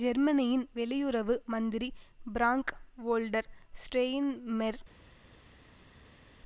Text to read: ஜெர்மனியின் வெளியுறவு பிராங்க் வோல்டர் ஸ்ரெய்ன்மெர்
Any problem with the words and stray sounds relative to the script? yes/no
yes